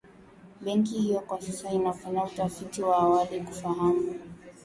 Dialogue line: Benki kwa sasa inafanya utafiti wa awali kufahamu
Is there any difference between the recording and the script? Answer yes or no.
yes